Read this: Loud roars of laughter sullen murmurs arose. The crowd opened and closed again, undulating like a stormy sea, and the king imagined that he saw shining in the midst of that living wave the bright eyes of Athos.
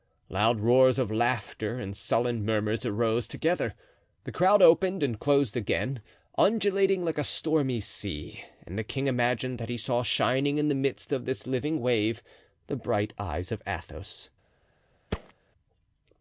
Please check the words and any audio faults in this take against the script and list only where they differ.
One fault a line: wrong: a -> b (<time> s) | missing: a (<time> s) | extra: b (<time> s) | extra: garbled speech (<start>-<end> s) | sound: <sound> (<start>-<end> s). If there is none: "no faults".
extra: and (1.8 s)
extra: together (3.3 s)
wrong: that -> this (11.2 s)
sound: thud (15.1-15.3 s)